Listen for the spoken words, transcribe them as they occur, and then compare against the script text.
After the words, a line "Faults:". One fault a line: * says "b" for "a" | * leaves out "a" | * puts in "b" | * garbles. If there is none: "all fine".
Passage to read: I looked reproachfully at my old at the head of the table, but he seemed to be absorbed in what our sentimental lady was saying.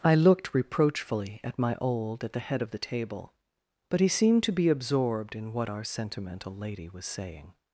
I looked reproachfully at my old at the head of the table, but he seemed to be absorbed in what our sentimental lady was saying.
Faults:
all fine